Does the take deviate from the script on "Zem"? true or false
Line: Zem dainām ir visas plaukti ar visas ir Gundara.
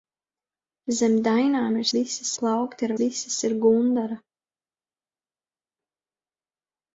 false